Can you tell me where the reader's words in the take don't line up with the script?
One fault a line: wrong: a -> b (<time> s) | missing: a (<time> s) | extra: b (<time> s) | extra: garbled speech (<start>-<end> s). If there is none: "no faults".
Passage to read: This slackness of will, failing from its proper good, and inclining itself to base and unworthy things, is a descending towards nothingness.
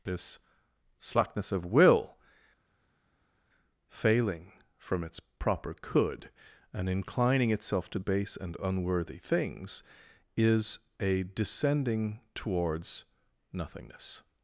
wrong: good -> could (5.7 s)